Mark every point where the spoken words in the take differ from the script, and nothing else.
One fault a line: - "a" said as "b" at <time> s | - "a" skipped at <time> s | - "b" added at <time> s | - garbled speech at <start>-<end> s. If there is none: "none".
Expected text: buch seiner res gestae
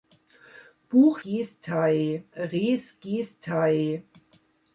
- "seiner" said as "gestae" at 1.2 s